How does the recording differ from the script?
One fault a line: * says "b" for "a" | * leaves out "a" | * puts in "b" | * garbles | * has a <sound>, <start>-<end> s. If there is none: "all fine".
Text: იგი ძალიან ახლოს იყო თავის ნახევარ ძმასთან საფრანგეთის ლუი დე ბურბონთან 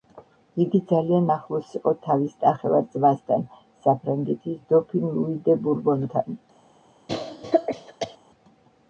* puts in "დოფინ"
* has a cough, 7.1-8.2 s